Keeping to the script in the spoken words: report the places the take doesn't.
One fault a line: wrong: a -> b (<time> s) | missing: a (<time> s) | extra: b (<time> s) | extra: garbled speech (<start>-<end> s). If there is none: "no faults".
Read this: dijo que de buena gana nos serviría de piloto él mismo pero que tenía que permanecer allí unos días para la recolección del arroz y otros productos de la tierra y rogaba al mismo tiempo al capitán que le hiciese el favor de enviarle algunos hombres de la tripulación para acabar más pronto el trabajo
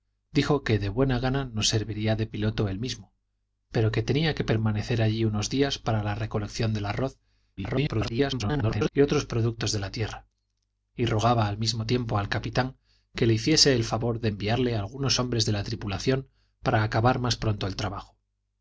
extra: garbled speech (7.6-8.9 s)